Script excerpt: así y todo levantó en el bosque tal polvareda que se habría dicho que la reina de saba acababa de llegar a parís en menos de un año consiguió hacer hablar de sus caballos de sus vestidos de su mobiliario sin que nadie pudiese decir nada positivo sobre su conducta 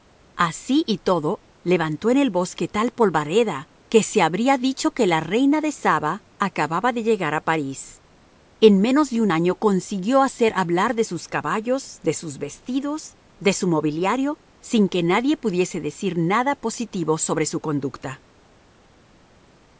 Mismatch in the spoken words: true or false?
false